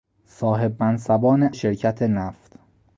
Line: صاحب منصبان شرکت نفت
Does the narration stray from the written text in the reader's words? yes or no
no